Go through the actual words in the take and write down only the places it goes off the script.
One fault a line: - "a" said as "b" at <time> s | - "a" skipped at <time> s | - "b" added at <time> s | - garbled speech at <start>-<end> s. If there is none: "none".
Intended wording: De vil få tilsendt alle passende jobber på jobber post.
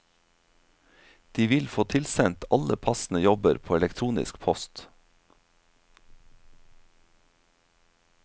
- "jobber" said as "elektronisk" at 3.8 s